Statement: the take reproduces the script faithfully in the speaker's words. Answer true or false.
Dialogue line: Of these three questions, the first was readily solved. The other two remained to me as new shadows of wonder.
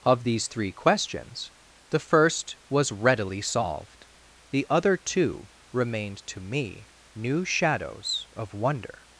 false